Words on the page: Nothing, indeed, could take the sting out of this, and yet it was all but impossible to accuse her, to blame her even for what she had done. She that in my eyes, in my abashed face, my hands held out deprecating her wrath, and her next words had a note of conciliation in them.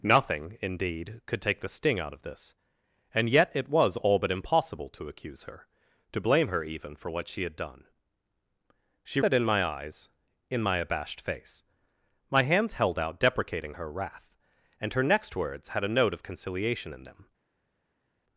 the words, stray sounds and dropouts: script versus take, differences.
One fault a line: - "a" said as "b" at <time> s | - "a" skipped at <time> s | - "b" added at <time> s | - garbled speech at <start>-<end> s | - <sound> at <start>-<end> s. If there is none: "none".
none